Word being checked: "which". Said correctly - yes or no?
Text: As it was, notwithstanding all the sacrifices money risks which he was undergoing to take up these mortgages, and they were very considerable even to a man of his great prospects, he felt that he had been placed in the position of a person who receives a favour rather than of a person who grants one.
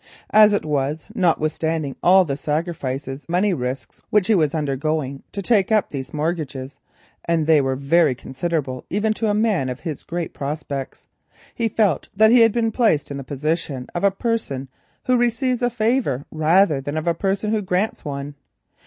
yes